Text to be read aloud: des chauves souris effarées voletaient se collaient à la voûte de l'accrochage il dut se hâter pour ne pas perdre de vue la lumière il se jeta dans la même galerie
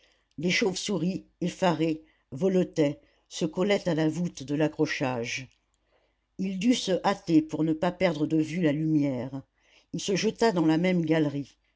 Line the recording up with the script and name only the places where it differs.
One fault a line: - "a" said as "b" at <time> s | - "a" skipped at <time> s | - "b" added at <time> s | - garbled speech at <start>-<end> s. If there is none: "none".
none